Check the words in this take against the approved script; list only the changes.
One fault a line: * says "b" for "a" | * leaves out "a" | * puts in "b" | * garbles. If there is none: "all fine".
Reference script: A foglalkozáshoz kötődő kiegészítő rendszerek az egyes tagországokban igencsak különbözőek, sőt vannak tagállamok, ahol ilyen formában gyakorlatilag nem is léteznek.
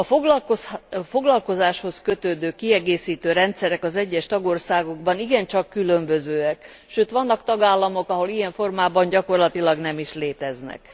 all fine